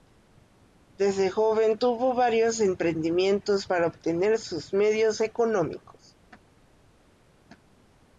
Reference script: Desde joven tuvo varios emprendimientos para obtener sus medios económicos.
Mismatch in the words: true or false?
false